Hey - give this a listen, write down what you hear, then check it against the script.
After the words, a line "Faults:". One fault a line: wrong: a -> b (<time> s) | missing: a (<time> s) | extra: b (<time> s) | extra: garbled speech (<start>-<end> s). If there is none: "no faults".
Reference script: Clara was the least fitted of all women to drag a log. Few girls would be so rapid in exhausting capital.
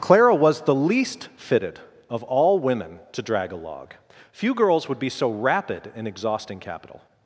Clara was the least fitted of all women to drag a log. Few girls would be so rapid in exhausting capital.
Faults:
no faults